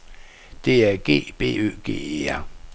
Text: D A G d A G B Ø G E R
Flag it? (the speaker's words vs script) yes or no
yes